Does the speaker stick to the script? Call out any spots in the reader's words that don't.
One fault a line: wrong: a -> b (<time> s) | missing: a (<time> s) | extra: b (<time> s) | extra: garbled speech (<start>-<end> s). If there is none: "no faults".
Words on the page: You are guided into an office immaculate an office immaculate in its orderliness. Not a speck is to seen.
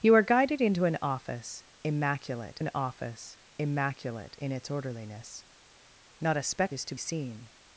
no faults